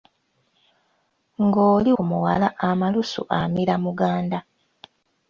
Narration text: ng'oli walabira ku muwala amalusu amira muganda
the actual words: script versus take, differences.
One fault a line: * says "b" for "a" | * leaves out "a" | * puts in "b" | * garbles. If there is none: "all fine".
* leaves out "walabira"